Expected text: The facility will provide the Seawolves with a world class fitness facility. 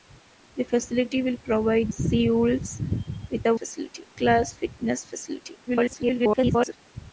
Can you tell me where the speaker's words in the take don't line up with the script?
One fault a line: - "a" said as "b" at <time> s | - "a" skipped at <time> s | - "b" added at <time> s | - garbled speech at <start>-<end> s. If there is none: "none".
- "the" skipped at 1.9 s
- "world" said as "facility" at 3.5 s
- garbled speech at 5.7-6.8 s